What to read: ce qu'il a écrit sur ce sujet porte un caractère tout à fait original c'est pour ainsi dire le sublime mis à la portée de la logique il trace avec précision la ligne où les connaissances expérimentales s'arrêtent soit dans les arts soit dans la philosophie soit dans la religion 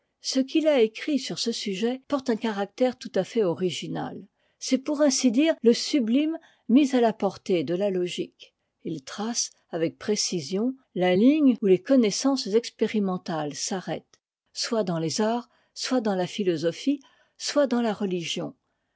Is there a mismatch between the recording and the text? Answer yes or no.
no